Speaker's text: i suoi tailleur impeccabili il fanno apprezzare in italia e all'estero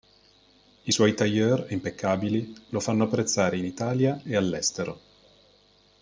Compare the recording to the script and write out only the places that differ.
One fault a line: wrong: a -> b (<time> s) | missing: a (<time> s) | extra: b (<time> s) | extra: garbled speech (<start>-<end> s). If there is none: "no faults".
wrong: il -> lo (2.7 s)